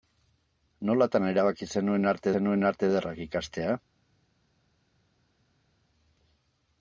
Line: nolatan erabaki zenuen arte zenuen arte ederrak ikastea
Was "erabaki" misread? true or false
false